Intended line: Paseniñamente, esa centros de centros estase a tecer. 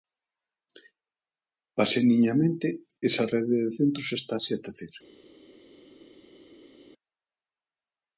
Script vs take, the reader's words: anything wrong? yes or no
yes